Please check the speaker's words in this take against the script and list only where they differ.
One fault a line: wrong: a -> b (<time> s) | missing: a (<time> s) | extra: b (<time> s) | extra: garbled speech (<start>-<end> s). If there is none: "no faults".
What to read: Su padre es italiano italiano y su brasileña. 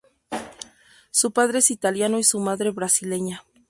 missing: italiano (2.2 s)
extra: madre (2.4 s)